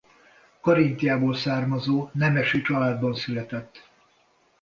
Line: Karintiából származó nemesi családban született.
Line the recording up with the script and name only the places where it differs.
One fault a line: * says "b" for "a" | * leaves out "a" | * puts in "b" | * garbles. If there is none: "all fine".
all fine